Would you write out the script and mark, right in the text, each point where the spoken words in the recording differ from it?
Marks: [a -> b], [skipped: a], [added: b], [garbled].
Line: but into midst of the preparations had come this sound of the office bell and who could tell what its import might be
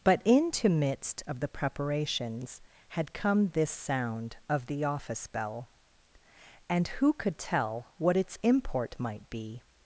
but into midst of the preparations had come this sound of the office bell and who could tell what its import might be